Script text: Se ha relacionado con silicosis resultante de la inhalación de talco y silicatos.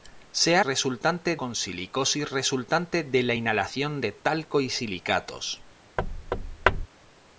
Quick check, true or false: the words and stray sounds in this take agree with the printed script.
false